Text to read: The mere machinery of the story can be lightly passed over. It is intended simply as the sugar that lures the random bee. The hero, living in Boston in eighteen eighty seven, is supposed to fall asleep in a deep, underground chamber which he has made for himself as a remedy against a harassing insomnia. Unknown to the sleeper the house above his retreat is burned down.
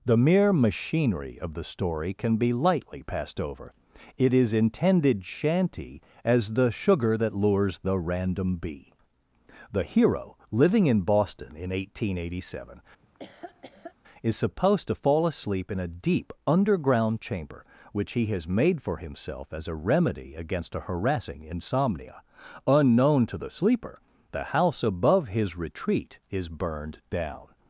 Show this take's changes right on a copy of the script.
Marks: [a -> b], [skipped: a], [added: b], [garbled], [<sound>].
The mere machinery of the story can be lightly passed over. It is intended [simply -> shanty] as the sugar that lures the random bee. The hero, living in Boston in eighteen eighty seven, [laugh] is supposed to fall asleep in a deep, underground chamber which he has made for himself as a remedy against a harassing insomnia. Unknown to the sleeper the house above his retreat is burned down.